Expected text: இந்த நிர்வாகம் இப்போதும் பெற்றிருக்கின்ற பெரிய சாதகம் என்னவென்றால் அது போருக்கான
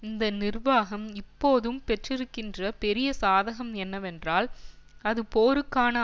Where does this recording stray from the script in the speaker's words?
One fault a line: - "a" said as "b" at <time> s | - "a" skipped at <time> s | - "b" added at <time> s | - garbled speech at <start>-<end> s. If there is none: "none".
none